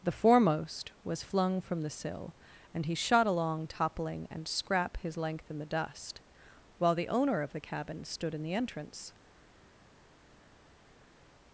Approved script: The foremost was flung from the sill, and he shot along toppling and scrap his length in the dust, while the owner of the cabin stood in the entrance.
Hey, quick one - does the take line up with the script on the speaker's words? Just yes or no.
yes